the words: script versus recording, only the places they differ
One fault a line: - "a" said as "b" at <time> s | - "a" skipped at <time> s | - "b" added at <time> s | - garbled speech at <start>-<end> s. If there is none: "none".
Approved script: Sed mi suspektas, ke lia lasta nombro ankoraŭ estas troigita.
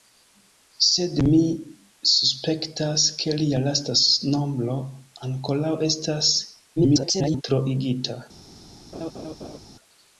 - garbled speech at 6.8-7.4 s